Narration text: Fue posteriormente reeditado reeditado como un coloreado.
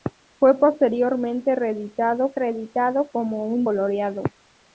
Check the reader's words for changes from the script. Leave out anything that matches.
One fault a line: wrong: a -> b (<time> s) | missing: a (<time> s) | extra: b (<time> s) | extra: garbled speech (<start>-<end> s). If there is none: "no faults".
no faults